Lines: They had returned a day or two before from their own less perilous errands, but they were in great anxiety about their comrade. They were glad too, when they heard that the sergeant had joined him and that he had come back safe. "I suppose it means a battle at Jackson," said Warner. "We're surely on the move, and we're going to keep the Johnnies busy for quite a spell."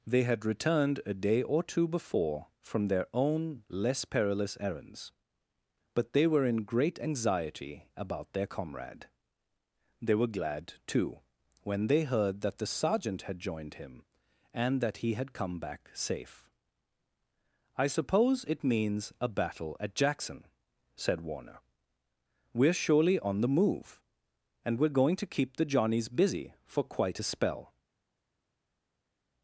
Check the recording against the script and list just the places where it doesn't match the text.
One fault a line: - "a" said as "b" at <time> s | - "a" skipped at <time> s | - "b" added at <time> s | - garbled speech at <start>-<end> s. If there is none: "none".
none